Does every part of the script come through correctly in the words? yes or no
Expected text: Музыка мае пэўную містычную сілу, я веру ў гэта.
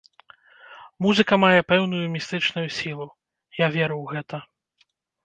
yes